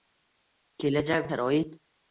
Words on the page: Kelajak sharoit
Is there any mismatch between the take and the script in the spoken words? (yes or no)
no